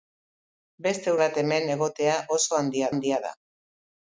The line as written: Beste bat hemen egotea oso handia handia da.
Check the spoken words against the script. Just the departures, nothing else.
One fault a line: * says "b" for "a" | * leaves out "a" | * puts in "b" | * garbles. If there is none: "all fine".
all fine